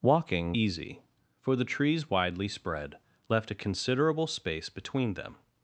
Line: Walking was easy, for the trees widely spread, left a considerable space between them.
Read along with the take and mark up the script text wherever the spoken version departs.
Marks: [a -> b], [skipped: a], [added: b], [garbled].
Walking [skipped: was] easy, for the trees widely spread, left a considerable space between them.